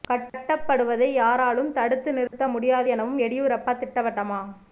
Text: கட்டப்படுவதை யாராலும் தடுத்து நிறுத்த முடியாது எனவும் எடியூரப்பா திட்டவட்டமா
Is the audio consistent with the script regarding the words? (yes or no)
yes